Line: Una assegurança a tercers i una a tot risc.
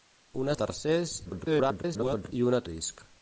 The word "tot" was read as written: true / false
false